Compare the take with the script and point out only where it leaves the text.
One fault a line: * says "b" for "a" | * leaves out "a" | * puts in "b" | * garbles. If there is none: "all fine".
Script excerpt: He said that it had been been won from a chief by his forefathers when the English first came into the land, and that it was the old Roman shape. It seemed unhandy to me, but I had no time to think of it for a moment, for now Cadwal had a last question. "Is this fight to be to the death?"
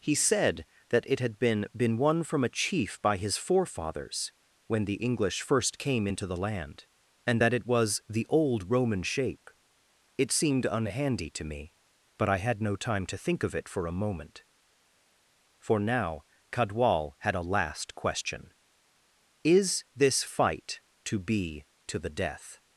all fine